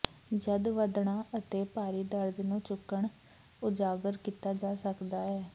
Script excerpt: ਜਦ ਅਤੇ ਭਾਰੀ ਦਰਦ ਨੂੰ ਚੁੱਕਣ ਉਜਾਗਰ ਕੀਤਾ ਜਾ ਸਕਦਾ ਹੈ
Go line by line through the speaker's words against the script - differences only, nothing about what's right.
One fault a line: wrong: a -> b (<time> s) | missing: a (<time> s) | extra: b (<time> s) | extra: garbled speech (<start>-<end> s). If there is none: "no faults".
extra: ਵਧਣਾ (0.7 s)